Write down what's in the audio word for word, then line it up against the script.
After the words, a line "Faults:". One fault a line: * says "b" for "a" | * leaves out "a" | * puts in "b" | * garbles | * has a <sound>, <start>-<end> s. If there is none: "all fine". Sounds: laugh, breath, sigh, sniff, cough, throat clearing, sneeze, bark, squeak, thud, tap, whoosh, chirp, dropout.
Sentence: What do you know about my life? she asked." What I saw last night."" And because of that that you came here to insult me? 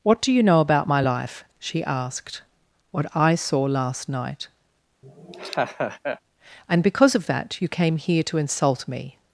What do you know about my life? she asked." What I saw last night."" And because of that you came here to insult me?
Faults:
* has a laugh, 5.0-6.2 s
* leaves out "that"